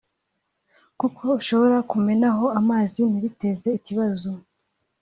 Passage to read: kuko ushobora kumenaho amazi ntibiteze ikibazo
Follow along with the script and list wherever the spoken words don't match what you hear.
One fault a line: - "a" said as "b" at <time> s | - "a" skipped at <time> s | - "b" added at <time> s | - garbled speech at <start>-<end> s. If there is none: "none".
none